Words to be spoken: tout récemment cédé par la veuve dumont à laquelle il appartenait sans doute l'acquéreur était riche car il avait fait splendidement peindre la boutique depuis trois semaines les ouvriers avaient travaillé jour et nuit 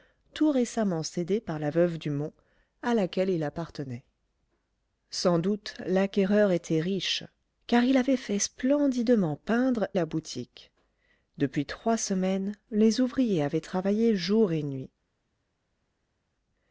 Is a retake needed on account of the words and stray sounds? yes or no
no